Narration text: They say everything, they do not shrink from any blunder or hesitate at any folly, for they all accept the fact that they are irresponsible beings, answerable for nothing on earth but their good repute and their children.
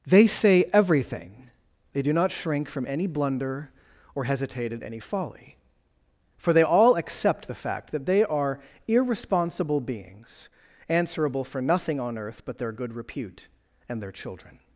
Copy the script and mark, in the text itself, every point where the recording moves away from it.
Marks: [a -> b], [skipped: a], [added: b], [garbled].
They say everything, they do not shrink from any blunder or hesitate at any folly, for they all accept the fact that they are irresponsible beings, answerable for nothing on earth but their good repute and their children.